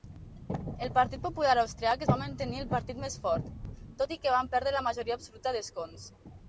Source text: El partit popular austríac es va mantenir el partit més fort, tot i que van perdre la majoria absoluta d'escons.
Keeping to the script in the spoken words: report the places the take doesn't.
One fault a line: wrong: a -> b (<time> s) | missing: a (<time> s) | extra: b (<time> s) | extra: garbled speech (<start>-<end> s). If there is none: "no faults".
no faults